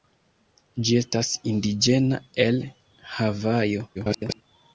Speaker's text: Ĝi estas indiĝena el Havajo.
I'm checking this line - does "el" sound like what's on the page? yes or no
yes